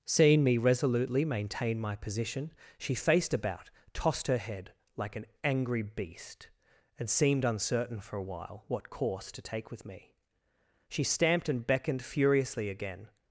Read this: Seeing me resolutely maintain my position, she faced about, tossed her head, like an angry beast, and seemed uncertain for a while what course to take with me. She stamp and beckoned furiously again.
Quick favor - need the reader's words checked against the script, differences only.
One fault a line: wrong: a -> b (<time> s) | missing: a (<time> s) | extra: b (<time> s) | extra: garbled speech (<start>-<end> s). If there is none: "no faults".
wrong: stamp -> stamped (11.0 s)